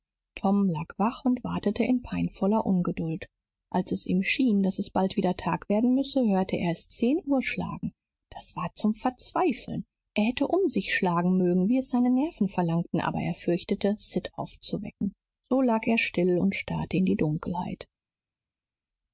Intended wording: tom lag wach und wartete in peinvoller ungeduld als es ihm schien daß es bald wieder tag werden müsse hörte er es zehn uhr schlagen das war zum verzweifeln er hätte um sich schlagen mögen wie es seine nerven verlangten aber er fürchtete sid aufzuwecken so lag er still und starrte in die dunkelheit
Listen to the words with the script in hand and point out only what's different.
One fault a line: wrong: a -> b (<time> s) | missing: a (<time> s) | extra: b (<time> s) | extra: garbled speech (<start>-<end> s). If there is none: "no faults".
no faults